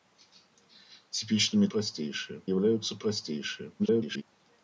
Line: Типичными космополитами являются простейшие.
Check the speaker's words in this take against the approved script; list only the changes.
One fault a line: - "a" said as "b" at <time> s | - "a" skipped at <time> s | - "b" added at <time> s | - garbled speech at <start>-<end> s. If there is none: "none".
- "космополитами" said as "простейшие" at 1.7 s
- garbled speech at 3.8-4.2 s